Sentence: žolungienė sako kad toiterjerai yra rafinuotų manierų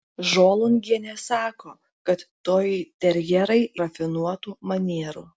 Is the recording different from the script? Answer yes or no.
yes